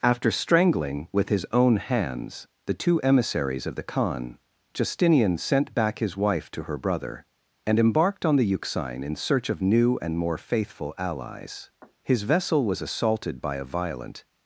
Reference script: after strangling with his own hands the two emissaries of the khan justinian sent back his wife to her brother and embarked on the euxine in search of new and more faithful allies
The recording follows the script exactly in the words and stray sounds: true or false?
false